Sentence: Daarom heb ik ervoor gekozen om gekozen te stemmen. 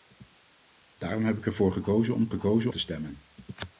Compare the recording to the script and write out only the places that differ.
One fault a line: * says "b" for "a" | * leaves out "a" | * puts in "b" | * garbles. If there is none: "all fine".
all fine